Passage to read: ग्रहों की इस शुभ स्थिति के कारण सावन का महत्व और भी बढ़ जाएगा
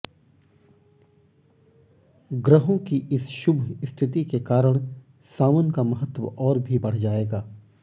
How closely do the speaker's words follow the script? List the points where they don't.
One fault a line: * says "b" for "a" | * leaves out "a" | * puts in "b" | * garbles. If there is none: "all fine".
all fine